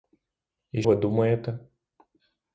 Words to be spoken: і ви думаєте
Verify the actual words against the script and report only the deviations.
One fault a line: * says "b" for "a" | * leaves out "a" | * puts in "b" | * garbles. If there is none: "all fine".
all fine